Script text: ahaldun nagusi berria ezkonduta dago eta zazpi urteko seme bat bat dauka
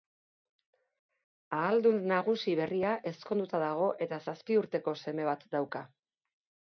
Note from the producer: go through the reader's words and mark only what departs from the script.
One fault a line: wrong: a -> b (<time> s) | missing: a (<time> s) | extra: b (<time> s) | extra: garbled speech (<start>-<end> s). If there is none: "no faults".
missing: bat (5.4 s)